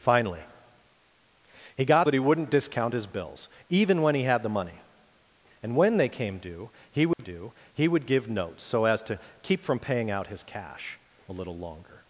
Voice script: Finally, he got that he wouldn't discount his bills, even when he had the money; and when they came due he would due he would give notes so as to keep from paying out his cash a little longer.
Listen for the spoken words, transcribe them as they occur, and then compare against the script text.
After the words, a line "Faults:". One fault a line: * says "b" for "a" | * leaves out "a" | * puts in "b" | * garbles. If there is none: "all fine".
Finally, he got that he wouldn't discount his bills, even when he had the money; and when they came due he would due he would give notes so as to keep from paying out his cash a little longer.
Faults:
all fine